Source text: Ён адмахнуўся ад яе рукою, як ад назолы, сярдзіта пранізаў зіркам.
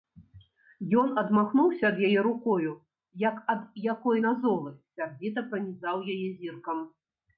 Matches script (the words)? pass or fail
fail